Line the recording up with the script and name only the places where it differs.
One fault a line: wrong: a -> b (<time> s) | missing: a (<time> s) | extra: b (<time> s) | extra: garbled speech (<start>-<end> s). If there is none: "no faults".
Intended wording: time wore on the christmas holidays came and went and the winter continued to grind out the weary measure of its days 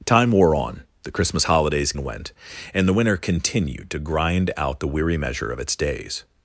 missing: came (1.9 s)